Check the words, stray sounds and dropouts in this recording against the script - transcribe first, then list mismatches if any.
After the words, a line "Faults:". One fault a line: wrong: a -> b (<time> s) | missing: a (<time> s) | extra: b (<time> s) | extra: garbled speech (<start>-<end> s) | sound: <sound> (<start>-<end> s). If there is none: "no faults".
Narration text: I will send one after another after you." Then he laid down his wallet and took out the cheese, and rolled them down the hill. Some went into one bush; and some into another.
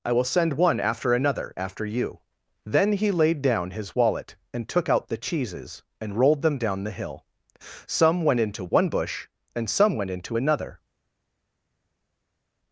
I will send one after another after you." Then he laid down his wallet and took out the cheeses, and rolled them down the hill. Some went into one bush; and some went into another.
Faults:
wrong: cheese -> cheeses (5.2 s)
extra: went (10.0 s)